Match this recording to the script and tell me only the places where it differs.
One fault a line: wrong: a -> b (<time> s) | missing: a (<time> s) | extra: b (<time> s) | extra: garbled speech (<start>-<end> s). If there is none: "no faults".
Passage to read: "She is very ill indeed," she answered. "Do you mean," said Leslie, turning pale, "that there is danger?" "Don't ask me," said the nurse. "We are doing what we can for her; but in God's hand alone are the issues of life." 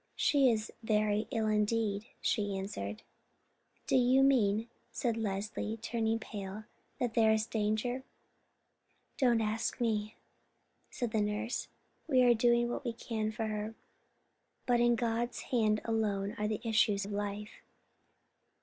no faults